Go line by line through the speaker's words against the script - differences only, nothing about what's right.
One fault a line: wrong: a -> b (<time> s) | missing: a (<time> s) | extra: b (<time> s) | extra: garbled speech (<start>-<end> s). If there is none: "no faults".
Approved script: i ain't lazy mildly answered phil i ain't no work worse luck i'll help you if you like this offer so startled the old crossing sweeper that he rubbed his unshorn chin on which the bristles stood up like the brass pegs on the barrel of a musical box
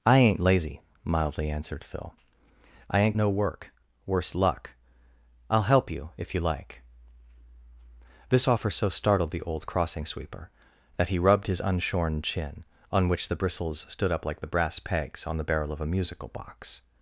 no faults